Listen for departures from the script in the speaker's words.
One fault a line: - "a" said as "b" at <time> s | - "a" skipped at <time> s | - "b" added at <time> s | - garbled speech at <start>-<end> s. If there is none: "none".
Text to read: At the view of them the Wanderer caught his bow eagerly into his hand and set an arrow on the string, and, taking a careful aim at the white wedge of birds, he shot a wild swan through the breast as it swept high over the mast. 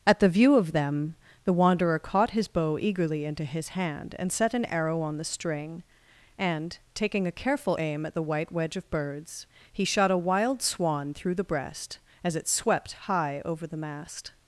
none